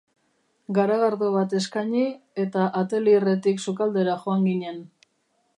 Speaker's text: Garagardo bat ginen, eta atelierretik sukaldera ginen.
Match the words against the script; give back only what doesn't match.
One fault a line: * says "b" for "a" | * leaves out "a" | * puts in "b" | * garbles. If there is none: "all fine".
* says "eskaini" for "ginen"
* puts in "joan"